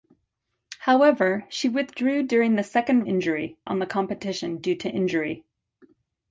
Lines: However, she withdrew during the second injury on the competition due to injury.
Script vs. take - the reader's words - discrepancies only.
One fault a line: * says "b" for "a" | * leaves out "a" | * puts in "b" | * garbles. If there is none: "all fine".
all fine